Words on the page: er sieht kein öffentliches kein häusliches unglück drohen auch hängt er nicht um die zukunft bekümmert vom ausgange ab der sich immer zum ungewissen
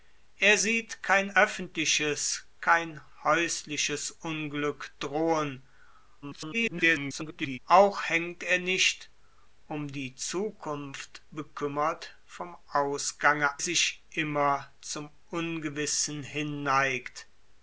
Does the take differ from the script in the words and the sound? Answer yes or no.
yes